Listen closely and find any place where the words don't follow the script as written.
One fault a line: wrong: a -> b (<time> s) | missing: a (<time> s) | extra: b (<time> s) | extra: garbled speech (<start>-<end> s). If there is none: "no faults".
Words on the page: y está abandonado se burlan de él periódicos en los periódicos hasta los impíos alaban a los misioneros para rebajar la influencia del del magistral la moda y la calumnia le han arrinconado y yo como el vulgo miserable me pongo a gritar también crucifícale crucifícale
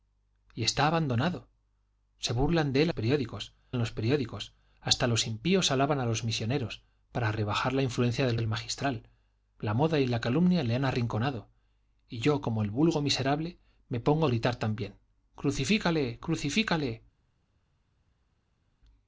no faults